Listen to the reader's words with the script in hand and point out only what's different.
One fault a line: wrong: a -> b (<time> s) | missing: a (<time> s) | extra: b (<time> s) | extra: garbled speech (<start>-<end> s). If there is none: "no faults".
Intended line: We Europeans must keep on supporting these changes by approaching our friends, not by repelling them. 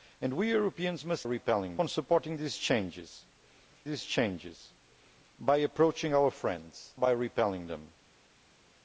wrong: keep -> repelling (1.2 s)
extra: these changes (3.8 s)
missing: not (7.0 s)